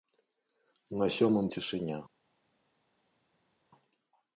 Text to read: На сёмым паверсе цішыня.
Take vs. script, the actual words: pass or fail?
fail